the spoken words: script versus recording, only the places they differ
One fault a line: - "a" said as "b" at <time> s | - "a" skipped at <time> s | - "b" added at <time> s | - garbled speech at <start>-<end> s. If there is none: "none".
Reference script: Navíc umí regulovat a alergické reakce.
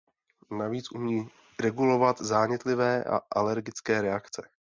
- "zánětlivé" added at 2.2 s